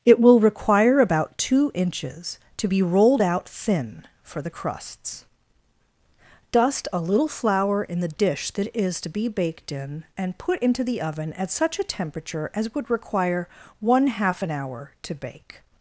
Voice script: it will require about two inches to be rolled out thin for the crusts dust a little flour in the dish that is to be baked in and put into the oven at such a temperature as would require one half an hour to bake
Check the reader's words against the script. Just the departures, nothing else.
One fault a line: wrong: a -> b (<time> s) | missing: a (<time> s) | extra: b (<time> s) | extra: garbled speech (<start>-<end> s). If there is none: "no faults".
no faults